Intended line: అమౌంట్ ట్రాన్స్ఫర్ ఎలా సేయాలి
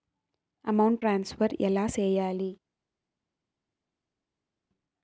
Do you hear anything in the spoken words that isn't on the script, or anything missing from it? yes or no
no